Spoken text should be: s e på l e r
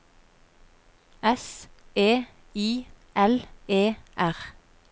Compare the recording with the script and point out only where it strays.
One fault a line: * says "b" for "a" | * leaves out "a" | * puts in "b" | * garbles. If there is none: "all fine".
* says "i" for "på"